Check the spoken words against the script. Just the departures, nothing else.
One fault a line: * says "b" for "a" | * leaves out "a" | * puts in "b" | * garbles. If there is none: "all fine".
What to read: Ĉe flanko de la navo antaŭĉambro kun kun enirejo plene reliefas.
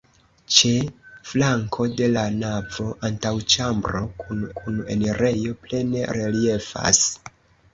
all fine